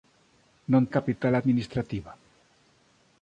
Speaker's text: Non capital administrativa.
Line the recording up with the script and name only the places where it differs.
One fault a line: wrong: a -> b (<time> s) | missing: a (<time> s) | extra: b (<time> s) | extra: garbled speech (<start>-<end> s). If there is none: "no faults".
no faults